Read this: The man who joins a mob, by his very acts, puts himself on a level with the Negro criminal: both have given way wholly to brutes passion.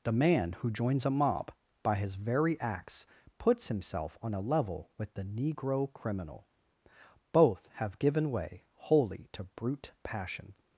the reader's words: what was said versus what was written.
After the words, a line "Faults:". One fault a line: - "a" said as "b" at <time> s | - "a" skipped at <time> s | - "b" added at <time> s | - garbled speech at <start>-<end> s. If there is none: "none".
The man who joins a mob, by his very acts, puts himself on a level with the Negro criminal: both have given way wholly to brute passion.
Faults:
- "brutes" said as "brute" at 9.4 s